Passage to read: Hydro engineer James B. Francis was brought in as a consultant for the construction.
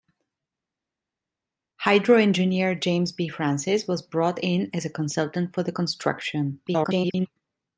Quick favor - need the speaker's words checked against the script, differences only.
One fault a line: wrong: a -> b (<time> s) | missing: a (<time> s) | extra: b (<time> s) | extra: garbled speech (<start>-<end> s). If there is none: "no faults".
extra: garbled speech (6.7-7.3 s)